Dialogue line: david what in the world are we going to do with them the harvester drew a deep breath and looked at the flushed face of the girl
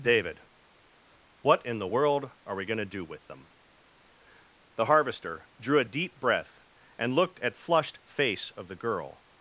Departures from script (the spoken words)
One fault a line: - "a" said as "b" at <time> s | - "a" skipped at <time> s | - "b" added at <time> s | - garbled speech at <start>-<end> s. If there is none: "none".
- "the" skipped at 7.6 s